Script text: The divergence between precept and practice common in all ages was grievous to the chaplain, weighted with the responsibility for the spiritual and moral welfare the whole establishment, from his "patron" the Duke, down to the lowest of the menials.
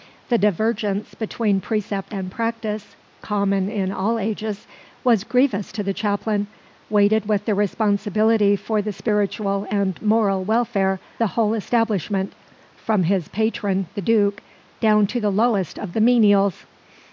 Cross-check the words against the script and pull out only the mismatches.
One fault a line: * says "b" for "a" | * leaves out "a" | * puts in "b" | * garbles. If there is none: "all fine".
all fine